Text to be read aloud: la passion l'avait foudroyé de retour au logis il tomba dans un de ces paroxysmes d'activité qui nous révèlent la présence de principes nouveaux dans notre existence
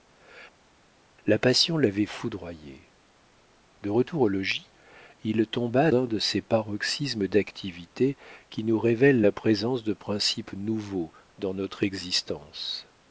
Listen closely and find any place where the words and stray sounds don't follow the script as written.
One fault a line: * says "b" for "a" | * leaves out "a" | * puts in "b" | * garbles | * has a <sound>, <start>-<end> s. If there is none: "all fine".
* leaves out "dans"